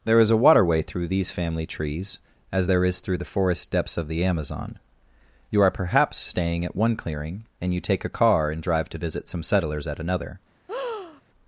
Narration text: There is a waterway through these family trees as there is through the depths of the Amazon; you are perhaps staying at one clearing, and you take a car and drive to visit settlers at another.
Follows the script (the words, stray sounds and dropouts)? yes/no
no